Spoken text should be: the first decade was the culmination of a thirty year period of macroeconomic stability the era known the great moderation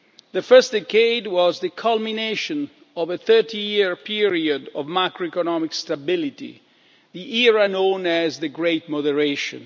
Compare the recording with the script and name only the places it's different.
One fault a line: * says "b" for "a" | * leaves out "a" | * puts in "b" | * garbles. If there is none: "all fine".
* puts in "as"